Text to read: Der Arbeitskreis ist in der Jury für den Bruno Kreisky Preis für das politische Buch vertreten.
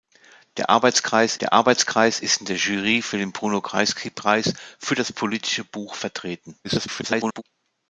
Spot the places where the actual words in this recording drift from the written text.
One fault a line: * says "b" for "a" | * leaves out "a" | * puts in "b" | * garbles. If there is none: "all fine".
* puts in "der Arbeitskreis"
* garbles